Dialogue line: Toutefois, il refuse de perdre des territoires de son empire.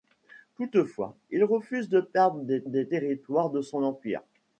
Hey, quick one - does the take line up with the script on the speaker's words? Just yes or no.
no